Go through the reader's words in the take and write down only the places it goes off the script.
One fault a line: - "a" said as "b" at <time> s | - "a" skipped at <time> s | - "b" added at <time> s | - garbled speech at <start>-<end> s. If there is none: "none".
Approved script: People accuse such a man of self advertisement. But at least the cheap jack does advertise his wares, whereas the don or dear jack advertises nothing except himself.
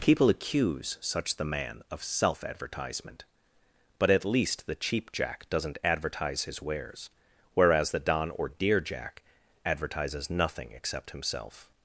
- "a" said as "the" at 1.4 s
- "does" said as "doesn't" at 5.5 s